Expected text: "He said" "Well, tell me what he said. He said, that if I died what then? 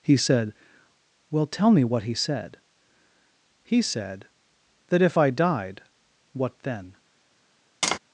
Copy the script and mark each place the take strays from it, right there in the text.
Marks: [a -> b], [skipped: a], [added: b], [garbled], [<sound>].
"He said" "Well, tell me what he said. He said, that if I died what then? [tap]